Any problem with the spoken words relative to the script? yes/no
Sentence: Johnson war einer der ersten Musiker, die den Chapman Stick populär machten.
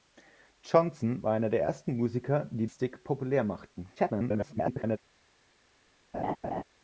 yes